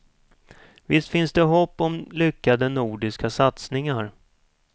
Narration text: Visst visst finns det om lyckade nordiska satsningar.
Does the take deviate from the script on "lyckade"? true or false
false